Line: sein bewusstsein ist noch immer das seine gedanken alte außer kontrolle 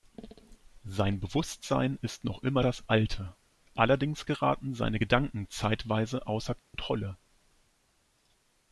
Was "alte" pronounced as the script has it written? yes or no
no